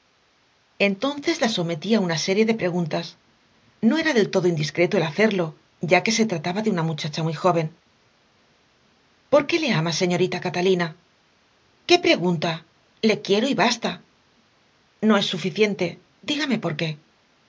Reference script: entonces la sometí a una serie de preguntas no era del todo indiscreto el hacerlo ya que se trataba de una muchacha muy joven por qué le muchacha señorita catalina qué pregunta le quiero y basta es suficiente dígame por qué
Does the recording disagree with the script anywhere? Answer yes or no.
yes